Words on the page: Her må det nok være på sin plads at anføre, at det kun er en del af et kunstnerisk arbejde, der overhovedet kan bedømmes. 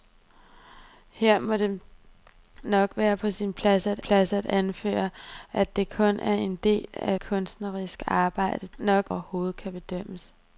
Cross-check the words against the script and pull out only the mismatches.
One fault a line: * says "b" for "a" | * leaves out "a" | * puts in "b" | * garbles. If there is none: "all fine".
* puts in "plads at"
* leaves out "et"
* says "nok" for "der"